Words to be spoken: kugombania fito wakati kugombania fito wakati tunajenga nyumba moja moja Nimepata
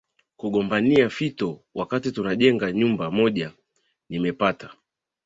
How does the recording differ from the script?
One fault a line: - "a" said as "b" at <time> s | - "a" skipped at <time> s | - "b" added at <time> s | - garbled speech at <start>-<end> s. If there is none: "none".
- "kugombania fito wakati" skipped at 2.1 s
- "moja" skipped at 3.5 s